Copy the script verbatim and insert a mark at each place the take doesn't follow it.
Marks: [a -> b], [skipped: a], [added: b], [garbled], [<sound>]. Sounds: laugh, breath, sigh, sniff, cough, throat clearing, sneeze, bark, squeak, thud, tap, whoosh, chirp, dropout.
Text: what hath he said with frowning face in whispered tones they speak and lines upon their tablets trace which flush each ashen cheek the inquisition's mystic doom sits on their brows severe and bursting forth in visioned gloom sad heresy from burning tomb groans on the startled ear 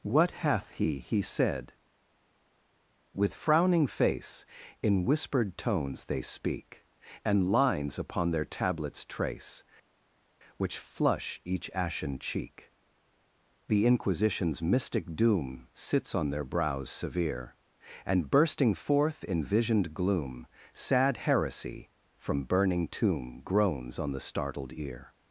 what hath he [added: he] said with frowning face in whispered tones they speak and lines upon their tablets trace which flush each ashen cheek the inquisition's mystic doom sits on their brows severe and bursting forth in visioned gloom sad heresy from burning tomb groans on the startled ear